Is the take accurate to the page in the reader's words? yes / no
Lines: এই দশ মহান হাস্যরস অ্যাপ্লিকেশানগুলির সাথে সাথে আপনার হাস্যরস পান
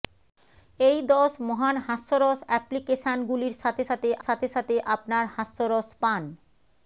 no